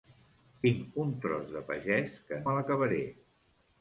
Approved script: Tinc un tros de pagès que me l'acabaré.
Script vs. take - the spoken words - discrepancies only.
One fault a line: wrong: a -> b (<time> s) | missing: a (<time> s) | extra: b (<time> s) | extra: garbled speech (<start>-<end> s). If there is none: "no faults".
no faults